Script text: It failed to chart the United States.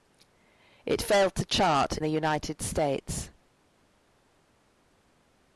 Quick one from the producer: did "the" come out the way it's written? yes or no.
yes